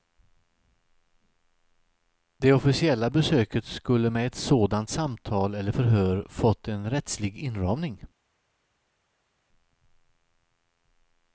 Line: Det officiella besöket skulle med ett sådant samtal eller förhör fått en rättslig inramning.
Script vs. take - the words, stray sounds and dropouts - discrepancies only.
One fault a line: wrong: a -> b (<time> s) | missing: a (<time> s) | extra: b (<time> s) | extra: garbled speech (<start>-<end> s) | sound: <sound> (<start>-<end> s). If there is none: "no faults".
no faults